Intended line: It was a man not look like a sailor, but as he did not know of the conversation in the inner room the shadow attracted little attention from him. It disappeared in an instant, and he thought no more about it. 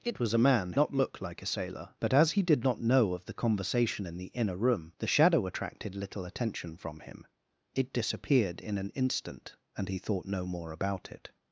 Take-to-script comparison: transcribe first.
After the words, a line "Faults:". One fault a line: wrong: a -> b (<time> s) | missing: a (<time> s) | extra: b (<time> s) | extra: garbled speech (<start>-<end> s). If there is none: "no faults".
It was a man not look like a sailor, but as he did not know of the conversation in the inner room the shadow attracted little attention from him. It disappeared in an instant, and he thought no more about it.
Faults:
no faults